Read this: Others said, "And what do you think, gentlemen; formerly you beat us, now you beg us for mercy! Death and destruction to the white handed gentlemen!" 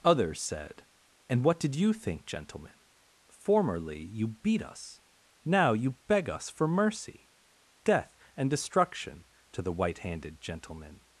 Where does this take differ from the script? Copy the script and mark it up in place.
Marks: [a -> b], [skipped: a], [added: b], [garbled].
Others said, "And what [do -> did] you think, gentlemen; formerly you beat us, now you beg us for mercy! Death and destruction to the white handed gentlemen!"